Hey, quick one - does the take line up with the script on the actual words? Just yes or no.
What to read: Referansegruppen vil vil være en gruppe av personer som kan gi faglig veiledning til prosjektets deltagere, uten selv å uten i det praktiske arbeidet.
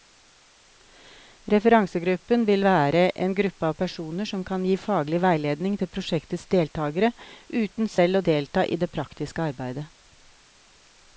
no